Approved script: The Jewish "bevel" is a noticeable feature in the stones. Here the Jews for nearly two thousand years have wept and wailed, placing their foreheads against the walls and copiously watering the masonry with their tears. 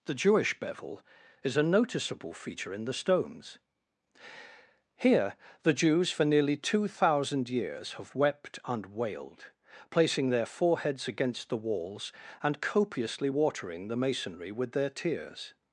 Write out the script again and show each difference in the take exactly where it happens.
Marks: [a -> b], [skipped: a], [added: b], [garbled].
The Jewish "bevel" is a noticeable feature in the stones. Here the Jews for nearly two thousand years have wept and wailed, placing their foreheads against the walls and copiously watering the masonry with their tears.